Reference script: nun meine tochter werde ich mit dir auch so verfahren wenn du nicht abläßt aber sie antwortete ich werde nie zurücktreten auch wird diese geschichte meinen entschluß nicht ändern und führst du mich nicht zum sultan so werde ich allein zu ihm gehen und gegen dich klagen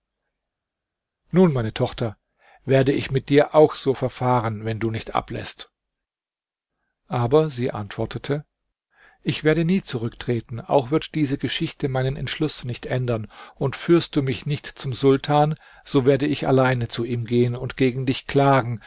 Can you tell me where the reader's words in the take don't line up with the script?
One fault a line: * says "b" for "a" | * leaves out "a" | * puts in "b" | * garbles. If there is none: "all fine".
all fine